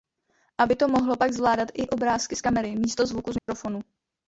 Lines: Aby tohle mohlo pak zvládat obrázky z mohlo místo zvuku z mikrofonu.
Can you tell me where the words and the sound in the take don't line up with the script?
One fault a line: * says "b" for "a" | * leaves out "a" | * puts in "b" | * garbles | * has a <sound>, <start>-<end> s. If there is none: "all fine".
* says "to" for "tohle"
* puts in "i"
* says "kamery" for "mohlo"
* has a dropout, 3.4-3.5 s